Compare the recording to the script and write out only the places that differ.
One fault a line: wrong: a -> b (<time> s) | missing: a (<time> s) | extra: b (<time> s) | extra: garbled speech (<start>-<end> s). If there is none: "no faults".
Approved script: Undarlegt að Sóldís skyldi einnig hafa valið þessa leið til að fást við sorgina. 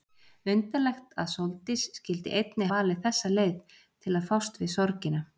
missing: hafa (2.7 s)